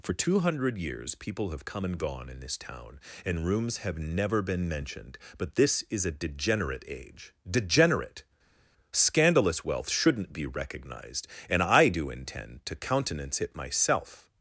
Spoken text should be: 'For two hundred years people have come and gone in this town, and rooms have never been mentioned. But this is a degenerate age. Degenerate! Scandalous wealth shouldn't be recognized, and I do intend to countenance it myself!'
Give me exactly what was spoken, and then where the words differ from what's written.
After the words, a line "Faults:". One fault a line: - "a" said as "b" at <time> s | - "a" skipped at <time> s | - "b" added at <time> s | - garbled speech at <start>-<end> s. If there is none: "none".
'For two hundred years people have come and gone in this town, and rooms have never been mentioned. But this is a degenerate age. Degenerate! Scandalous wealth shouldn't be recognized, and I do intend to countenance it myself!'
Faults:
none